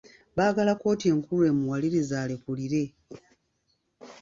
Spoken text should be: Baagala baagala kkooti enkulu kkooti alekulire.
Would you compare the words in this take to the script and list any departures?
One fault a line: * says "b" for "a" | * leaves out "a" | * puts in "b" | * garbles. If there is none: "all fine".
* leaves out "baagala"
* says "emuwalirize" for "kkooti"